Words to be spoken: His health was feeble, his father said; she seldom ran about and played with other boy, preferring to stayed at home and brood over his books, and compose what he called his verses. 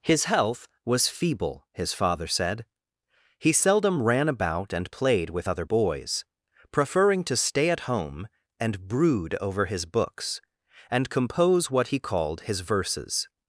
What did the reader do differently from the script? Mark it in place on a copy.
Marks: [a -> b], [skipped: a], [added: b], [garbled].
His health was feeble, his father said; [she -> he] seldom ran about and played with other [boy, -> boys] preferring to [stayed -> stay] at home and brood over his books, and compose what he called his verses.